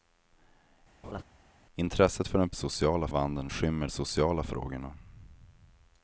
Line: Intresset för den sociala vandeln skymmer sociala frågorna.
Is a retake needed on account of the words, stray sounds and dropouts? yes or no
yes